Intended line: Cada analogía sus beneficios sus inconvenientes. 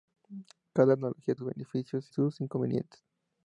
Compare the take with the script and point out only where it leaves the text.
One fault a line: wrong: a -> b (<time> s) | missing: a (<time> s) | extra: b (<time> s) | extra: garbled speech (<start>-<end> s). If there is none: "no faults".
no faults